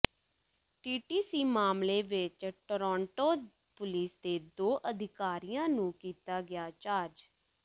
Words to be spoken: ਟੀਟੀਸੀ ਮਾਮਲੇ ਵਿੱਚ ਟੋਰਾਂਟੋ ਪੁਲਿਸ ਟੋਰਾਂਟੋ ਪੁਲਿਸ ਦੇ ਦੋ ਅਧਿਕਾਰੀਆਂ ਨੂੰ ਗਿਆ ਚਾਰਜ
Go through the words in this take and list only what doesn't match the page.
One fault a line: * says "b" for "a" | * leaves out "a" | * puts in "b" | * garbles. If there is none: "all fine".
* leaves out "ਟੋਰਾਂਟੋ ਪੁਲਿਸ"
* puts in "ਕੀਤਾ"